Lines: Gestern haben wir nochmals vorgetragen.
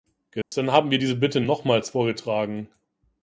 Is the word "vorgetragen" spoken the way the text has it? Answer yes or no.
yes